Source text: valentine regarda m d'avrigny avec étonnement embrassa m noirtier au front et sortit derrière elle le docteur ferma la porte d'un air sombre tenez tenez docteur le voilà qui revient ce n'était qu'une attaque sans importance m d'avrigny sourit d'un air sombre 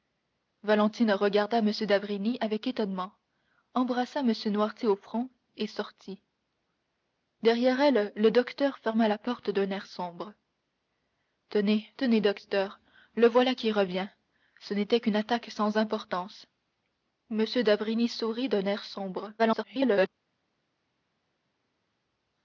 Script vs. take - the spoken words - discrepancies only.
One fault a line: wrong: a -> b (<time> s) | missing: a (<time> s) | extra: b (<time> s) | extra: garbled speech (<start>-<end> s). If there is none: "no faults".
extra: garbled speech (19.4-20.1 s)